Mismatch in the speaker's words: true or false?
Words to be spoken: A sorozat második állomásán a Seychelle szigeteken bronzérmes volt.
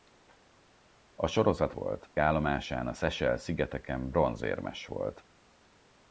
true